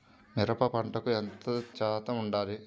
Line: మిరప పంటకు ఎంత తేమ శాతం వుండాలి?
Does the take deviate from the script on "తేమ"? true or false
true